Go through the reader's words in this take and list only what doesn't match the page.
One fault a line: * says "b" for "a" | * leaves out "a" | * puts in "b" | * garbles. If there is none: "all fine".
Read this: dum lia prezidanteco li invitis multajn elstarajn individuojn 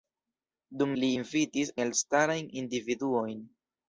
* leaves out "lia prezidanteco"
* leaves out "multajn"